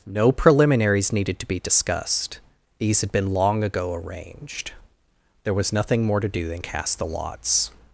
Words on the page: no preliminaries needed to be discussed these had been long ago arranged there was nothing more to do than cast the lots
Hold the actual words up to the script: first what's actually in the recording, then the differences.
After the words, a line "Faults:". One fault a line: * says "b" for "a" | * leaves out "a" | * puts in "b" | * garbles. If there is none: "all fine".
no preliminaries needed to be discussed these had been long ago arranged there was nothing more to do than cast the lots
Faults:
all fine